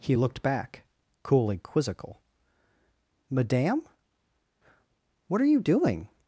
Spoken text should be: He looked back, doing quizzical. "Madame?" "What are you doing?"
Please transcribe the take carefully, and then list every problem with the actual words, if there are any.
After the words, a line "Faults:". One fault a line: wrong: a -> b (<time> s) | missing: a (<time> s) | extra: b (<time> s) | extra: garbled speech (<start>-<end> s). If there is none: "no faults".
He looked back, coolly quizzical. "Madame?" "What are you doing?"
Faults:
wrong: doing -> coolly (1.2 s)